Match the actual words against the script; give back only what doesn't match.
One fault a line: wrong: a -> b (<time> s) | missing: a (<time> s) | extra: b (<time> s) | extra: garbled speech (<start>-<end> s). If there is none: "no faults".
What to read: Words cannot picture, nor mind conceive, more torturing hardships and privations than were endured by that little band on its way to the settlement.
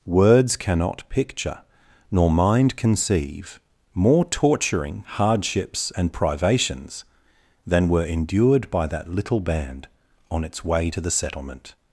no faults